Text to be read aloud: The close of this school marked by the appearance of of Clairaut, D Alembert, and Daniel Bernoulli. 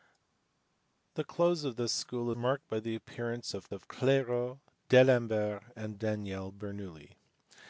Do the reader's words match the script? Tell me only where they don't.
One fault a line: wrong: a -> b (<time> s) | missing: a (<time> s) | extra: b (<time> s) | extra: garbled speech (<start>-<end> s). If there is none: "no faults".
no faults